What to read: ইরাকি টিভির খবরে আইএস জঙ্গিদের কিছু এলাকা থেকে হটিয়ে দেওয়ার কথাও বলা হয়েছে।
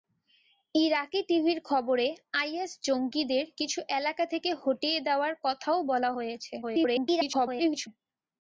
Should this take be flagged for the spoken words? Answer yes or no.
yes